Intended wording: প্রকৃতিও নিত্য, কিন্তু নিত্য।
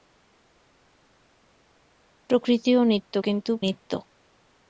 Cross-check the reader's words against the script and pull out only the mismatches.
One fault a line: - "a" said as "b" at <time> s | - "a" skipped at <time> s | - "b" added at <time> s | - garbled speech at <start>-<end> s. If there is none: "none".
none